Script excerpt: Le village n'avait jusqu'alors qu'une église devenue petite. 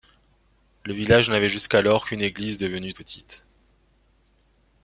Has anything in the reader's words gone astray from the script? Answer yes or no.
no